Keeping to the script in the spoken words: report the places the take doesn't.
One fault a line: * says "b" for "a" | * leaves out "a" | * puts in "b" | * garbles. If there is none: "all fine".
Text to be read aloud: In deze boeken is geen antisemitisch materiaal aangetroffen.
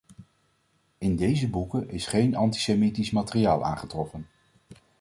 all fine